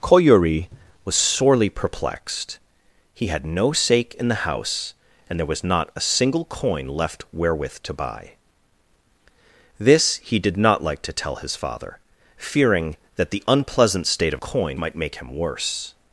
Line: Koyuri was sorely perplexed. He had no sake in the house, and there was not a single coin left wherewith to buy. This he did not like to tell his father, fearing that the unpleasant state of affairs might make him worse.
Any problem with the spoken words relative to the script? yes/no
yes